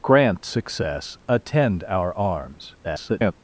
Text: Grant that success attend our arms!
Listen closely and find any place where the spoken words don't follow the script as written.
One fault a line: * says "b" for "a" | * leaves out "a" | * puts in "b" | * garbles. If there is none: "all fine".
* leaves out "that"
* garbles